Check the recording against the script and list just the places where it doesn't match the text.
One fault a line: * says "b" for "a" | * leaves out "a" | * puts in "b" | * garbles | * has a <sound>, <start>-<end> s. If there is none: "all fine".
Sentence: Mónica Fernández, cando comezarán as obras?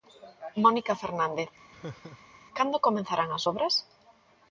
* has a laugh, 1.7-2.4 s